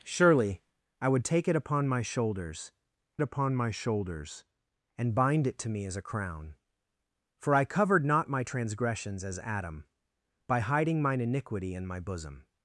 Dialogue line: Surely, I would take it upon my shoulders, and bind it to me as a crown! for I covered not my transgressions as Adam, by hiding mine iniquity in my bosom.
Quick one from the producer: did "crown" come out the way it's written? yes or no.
yes